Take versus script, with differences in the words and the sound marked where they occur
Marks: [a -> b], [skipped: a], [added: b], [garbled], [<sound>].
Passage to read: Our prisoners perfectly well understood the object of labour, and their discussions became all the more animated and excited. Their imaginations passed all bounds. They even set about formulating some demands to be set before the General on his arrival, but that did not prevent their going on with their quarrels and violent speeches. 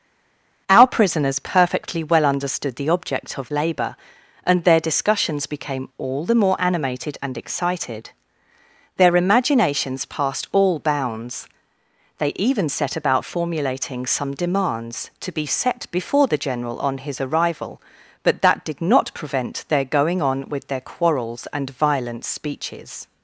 Our prisoners perfectly well understood the object of labour, and their discussions became all the more animated and excited. Their imaginations passed all bounds. They even set about formulating some demands to be set before the General on his arrival, but that did not prevent their going on with their quarrels and violent speeches.